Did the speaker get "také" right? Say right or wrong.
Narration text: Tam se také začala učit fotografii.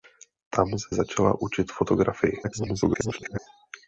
wrong